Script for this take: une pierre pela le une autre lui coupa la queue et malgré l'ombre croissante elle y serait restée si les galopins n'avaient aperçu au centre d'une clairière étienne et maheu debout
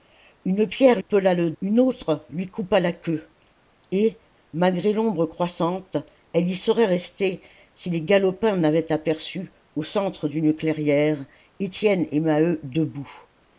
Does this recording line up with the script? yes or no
yes